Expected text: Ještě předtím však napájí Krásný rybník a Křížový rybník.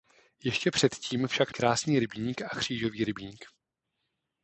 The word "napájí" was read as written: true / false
false